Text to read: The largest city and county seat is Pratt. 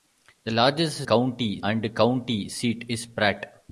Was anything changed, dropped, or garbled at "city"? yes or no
yes